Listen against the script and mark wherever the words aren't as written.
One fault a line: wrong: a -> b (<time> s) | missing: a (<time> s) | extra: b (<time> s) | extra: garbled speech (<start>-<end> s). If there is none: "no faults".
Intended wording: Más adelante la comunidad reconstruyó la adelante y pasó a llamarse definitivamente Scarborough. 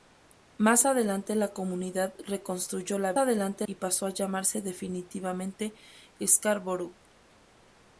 no faults